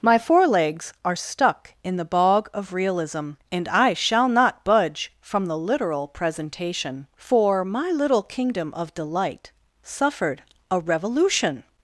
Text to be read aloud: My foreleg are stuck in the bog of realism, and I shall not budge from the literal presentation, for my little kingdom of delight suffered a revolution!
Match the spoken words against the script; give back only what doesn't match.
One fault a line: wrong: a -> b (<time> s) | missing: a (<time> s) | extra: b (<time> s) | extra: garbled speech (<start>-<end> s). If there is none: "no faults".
wrong: foreleg -> forelegs (0.2 s)